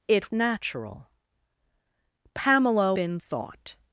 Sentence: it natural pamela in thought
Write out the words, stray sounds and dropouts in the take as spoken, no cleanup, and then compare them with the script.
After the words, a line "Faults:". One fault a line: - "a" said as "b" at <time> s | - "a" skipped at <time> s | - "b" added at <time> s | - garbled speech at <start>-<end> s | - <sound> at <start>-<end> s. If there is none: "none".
it natural pamela in thought
Faults:
none